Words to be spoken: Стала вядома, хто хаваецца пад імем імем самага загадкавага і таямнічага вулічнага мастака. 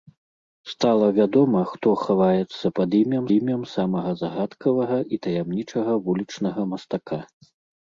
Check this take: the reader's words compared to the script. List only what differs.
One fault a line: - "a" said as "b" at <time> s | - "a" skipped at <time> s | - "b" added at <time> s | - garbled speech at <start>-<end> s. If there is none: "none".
none